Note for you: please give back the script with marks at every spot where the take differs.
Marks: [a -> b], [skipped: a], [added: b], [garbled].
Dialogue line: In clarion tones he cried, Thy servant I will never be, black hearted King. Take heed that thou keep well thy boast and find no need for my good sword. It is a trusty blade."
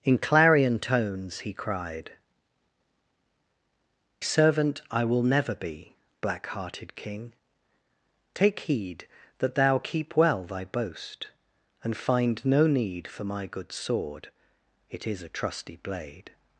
In clarion tones he cried, [skipped: Thy] servant I will never be, black hearted King. Take heed that thou keep well thy boast and find no need for my good sword. It is a trusty blade."